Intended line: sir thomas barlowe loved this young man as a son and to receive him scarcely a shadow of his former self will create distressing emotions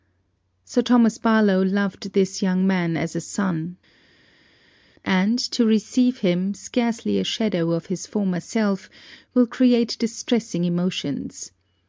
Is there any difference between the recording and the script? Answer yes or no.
no